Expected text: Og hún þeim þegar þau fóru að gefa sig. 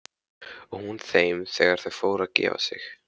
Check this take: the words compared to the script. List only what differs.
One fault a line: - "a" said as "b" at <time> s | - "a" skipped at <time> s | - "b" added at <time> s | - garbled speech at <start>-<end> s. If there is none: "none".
none